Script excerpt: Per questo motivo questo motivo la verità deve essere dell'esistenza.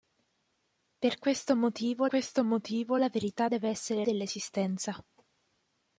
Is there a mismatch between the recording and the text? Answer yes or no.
no